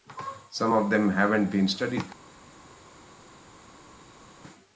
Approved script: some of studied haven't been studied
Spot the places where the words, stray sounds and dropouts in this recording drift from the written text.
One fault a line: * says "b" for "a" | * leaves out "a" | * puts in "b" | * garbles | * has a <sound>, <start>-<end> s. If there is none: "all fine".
* says "them" for "studied"